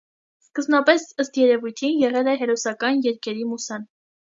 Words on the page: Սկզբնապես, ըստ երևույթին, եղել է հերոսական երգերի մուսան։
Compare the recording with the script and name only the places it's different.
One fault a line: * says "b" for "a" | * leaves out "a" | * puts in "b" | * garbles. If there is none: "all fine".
all fine